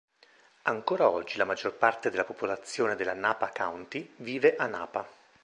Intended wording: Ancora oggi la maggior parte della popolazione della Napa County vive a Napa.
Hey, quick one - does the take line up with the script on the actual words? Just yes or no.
yes